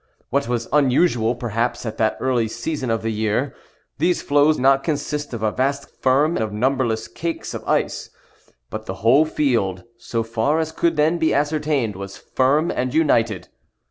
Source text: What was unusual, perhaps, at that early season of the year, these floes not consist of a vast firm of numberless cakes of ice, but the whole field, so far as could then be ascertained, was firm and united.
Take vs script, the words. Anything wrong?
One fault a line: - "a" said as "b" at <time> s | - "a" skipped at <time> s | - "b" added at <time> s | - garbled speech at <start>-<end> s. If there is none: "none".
none